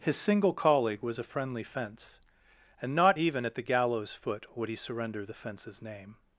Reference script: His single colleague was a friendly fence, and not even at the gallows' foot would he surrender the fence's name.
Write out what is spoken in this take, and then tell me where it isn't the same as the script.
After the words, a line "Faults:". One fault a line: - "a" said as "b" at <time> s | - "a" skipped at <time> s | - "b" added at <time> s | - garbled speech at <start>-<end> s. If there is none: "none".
His single colleague was a friendly fence, and not even at the gallows' foot would he surrender the fence's name.
Faults:
none